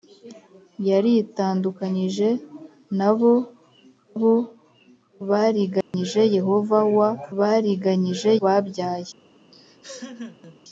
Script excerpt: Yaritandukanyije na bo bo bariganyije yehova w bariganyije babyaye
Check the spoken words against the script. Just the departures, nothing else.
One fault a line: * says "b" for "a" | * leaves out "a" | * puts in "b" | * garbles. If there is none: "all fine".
all fine